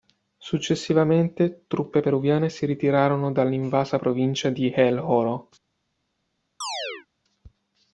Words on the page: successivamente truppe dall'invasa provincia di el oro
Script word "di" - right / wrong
right